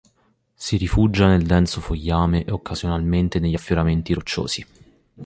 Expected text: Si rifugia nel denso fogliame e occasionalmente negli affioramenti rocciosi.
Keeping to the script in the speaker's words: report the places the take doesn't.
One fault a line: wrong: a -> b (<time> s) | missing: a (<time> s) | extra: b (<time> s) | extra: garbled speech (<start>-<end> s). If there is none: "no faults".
no faults